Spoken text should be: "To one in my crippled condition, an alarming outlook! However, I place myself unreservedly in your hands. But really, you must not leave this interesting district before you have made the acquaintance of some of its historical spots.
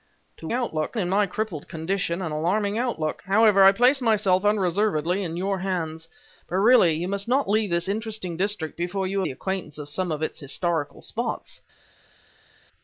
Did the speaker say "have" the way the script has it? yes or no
no